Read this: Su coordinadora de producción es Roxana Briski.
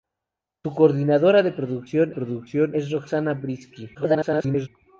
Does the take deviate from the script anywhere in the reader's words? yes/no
yes